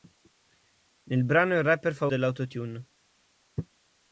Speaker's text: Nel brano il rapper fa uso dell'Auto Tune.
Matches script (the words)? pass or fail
fail